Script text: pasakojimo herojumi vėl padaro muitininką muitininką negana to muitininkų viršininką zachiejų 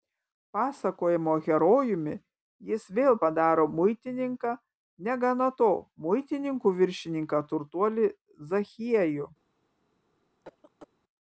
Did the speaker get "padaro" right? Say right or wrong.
right